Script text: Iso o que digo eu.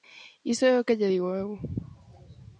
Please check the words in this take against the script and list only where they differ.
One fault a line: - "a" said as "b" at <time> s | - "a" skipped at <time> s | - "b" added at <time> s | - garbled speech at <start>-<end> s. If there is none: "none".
- "é" added at 0.7 s
- "lle" added at 1.0 s